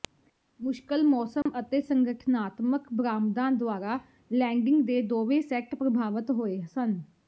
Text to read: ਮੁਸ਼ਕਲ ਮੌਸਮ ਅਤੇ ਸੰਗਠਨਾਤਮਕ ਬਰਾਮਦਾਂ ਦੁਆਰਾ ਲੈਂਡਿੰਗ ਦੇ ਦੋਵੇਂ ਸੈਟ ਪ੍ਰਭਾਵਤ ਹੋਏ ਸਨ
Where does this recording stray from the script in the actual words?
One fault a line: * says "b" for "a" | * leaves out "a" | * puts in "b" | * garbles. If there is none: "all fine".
all fine